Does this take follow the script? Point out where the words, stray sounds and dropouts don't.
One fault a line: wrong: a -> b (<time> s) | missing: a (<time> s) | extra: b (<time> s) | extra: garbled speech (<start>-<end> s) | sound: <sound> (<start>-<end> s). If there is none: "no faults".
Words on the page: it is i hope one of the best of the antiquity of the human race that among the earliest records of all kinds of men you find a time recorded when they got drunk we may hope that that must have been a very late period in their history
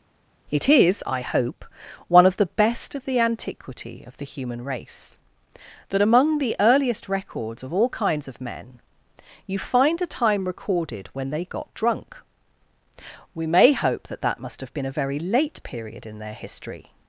no faults